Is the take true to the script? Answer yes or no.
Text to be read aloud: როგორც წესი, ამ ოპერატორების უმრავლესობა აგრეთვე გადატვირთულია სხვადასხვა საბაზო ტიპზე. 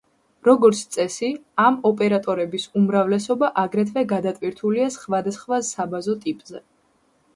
yes